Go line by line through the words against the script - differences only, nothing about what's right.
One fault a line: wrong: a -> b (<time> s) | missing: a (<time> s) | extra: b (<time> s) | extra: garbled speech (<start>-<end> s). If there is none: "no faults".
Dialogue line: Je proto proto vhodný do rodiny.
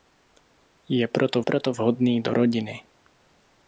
no faults